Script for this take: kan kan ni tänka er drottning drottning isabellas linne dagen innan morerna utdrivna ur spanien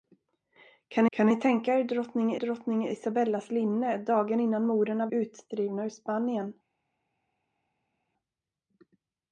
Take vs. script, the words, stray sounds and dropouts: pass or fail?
pass